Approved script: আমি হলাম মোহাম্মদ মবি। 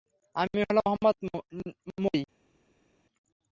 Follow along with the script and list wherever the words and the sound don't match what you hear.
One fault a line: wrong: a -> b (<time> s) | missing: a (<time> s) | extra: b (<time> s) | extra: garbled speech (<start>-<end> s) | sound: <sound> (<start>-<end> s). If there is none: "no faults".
no faults